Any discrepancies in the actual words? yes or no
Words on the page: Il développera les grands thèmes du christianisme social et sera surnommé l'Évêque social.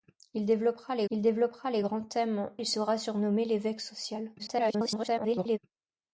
yes